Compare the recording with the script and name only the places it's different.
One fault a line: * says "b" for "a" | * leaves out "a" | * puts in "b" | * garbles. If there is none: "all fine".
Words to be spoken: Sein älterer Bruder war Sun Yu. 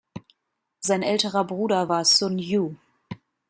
all fine